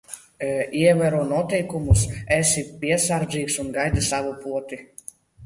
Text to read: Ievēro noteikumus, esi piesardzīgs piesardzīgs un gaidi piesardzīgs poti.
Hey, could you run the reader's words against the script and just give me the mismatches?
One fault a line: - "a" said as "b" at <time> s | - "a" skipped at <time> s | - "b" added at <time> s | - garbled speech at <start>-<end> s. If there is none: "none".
- "piesardzīgs" skipped at 3.6 s
- "piesardzīgs" said as "savu" at 4.1 s